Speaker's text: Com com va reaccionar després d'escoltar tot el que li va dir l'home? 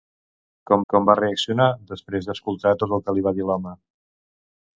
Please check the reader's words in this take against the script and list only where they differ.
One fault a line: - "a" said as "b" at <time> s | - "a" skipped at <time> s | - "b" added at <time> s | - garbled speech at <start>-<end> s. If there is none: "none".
none